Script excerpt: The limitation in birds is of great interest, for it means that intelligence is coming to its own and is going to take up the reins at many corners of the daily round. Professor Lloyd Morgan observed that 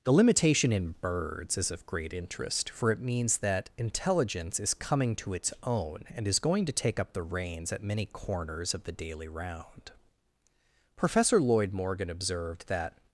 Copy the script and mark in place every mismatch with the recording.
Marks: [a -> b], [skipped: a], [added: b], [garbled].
The limitation in birds is of great interest, for it means that intelligence is coming to its own and is going to take up the reins at many corners of the daily round. Professor Lloyd Morgan observed that